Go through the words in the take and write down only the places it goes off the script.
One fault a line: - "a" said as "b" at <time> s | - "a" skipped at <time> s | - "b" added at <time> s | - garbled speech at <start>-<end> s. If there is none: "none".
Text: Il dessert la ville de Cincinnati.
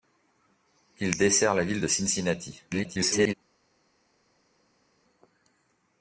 - garbled speech at 2.7-3.3 s